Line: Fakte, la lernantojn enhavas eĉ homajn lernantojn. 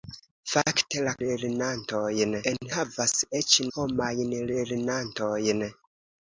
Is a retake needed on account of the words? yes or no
no